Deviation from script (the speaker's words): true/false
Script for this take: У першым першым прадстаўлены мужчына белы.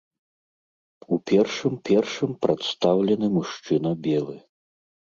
false